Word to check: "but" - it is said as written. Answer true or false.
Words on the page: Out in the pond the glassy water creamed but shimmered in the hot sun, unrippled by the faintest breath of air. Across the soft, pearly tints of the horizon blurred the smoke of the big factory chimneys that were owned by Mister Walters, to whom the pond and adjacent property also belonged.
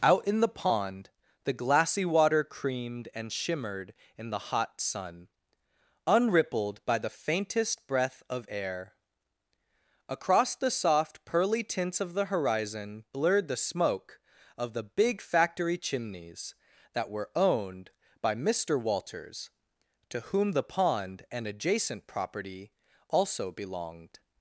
false